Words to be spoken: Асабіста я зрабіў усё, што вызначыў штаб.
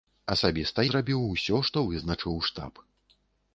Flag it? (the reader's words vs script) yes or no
yes